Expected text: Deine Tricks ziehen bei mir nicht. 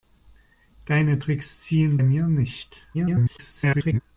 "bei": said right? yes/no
no